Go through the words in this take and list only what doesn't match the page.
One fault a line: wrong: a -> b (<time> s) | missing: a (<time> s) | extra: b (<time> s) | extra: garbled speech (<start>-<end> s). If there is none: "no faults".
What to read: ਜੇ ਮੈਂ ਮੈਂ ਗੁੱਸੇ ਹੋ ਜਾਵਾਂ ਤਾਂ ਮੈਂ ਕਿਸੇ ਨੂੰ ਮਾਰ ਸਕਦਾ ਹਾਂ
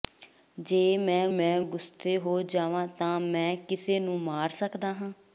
no faults